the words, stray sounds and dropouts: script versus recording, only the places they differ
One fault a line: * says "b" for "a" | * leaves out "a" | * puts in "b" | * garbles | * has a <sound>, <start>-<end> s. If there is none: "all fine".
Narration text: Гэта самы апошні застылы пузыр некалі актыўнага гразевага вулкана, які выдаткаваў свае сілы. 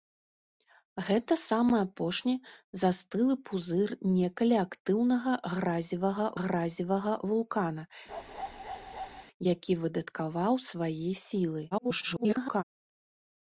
* puts in "гразевага"
* has a bark, 8.1-9.2 s
* garbles